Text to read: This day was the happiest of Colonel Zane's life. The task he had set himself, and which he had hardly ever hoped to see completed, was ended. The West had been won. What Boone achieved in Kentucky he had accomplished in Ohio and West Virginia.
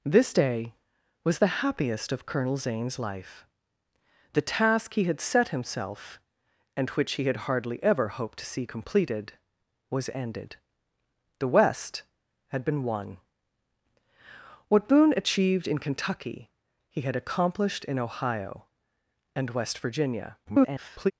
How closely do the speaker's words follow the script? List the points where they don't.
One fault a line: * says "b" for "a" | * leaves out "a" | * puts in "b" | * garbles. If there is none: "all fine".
* garbles